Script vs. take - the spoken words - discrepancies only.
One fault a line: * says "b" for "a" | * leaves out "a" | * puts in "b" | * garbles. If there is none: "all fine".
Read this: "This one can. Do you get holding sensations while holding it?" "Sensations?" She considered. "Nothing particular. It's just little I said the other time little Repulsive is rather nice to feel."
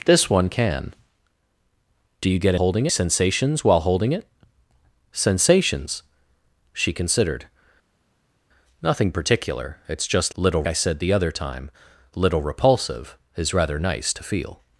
all fine